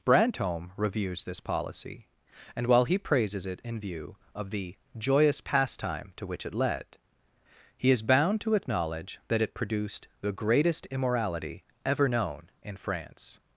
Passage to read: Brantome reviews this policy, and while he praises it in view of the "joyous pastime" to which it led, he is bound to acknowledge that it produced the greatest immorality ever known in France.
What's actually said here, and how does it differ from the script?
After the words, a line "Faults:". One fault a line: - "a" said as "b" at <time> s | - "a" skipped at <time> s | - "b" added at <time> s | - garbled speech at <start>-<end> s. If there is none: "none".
Brantome reviews this policy, and while he praises it in view of the "joyous pastime" to which it led, he is bound to acknowledge that it produced the greatest immorality ever known in France.
Faults:
none